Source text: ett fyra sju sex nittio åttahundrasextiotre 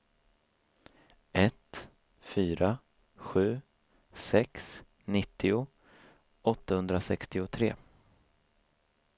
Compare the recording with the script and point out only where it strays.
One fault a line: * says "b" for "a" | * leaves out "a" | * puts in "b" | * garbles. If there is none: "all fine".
all fine